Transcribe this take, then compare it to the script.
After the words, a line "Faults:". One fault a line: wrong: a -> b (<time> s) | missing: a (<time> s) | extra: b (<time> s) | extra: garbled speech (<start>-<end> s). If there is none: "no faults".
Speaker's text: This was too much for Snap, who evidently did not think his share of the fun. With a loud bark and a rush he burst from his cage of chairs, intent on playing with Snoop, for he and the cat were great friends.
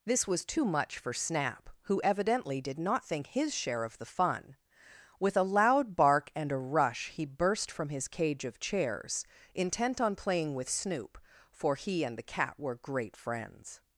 This was too much for Snap, who evidently did not think his share of the fun. With a loud bark and a rush he burst from his cage of chairs, intent on playing with Snoop, for he and the cat were great friends.
Faults:
no faults